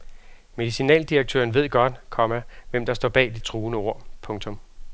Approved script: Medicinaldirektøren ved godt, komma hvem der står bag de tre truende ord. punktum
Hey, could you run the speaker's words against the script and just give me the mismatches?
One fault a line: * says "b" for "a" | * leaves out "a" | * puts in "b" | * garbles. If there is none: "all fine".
* leaves out "tre"